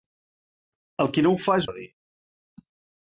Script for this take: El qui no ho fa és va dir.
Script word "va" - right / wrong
right